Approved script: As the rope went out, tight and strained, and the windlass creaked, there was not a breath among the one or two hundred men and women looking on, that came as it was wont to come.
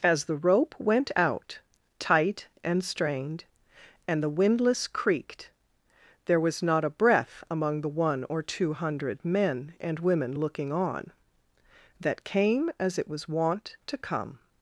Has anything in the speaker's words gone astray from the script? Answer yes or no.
no